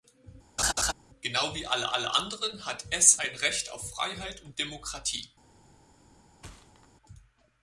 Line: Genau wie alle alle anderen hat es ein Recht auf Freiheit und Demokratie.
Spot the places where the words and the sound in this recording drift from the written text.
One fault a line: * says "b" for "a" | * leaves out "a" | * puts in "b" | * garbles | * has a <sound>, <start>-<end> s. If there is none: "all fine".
* has a laugh, 0.6-0.9 s
* has a thud, 6.4-6.9 s